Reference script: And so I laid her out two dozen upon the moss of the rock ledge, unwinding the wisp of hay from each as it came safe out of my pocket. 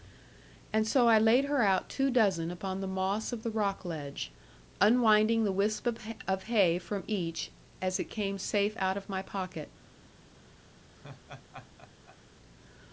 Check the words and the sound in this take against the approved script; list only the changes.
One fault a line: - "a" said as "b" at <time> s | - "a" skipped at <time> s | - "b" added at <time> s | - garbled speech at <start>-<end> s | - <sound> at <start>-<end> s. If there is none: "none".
- laugh at 11.0-12.2 s